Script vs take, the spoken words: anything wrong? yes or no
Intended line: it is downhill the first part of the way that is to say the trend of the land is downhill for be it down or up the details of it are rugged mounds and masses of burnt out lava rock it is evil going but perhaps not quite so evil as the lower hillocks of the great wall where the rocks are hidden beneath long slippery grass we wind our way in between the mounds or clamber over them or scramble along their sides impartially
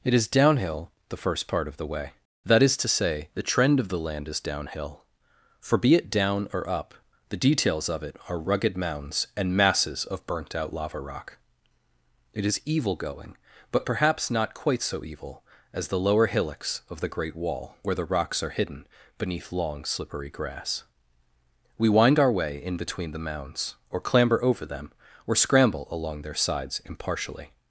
no